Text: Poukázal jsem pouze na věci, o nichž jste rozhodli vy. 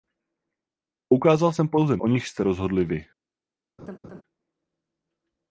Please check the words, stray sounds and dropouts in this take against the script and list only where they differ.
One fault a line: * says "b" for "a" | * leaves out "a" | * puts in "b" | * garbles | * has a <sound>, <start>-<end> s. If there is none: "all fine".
* leaves out "na věci"
* has a laugh, 3.8-4.2 s